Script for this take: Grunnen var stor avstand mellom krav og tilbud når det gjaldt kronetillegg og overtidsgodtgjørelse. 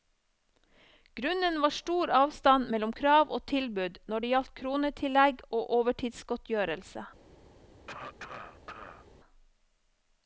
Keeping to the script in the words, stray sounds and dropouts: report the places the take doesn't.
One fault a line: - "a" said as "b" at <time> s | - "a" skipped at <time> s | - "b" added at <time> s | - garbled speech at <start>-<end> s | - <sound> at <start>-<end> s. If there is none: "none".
- cough at 7.9-9.1 s